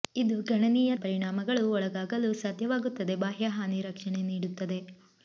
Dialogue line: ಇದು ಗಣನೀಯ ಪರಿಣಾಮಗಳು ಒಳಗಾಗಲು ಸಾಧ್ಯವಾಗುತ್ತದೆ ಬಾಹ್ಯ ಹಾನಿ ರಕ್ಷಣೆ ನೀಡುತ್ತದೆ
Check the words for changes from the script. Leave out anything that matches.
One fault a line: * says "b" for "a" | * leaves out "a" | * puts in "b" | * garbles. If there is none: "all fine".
all fine